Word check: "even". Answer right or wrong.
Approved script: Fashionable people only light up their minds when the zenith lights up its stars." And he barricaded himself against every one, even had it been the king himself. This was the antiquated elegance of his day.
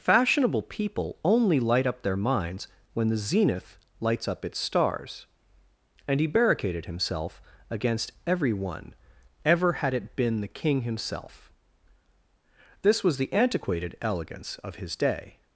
wrong